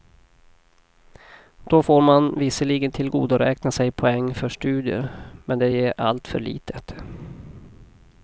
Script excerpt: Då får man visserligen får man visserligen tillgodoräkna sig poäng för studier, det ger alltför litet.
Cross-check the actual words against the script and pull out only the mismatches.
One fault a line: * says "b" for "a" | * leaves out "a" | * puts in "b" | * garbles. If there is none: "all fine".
* leaves out "får man visserligen"
* puts in "men"